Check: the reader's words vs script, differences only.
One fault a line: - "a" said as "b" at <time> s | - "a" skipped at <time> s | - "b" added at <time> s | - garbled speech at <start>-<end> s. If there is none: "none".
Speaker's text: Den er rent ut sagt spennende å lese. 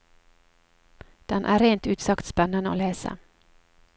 none